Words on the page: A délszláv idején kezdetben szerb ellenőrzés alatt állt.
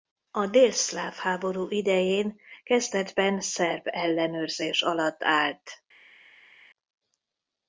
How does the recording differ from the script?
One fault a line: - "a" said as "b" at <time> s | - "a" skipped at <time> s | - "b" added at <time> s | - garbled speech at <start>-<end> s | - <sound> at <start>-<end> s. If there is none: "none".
- "háború" added at 1.1 s